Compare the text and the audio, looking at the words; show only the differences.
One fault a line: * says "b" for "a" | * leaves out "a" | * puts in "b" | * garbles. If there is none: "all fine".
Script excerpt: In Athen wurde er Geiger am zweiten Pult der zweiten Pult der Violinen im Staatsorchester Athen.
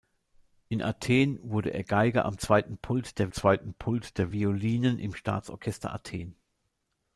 all fine